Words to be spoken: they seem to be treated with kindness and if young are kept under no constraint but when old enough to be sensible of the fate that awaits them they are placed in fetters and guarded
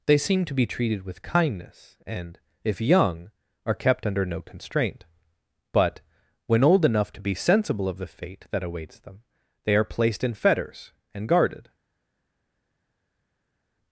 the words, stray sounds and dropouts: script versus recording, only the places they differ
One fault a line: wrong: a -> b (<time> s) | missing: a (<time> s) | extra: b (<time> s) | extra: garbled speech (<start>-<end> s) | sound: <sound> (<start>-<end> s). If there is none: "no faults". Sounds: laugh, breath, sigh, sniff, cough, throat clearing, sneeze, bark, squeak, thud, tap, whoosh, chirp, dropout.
no faults